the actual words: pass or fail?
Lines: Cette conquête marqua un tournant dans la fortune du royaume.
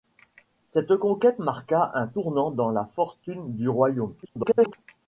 fail